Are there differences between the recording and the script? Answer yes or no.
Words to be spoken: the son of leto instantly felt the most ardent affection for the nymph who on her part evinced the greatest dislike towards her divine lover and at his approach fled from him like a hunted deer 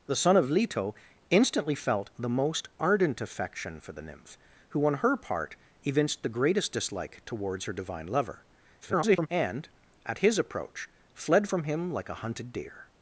yes